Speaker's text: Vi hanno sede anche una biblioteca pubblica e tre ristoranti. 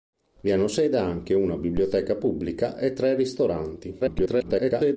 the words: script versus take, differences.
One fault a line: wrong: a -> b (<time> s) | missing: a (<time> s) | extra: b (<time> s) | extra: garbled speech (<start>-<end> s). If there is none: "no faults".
extra: garbled speech (4.0-5.0 s)